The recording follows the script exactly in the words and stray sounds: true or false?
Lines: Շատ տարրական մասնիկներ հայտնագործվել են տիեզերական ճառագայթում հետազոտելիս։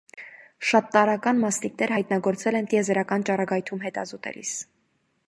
true